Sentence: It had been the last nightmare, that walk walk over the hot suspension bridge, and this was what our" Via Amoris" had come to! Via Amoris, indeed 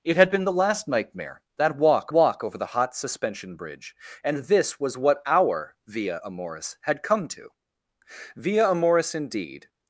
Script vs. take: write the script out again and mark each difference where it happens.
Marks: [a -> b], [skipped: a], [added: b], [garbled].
It had been the last nightmare, that walk walk over the hot suspension bridge, and this was what our" Via Amoris" had come to! Via Amoris, indeed